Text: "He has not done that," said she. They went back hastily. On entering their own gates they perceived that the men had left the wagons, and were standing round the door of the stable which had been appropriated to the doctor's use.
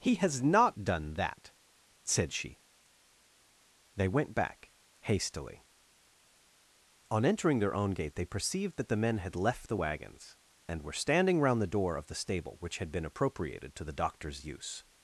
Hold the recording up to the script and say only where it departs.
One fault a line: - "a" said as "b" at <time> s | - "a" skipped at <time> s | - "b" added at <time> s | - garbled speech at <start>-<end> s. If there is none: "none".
- "gates" said as "gate" at 7.9 s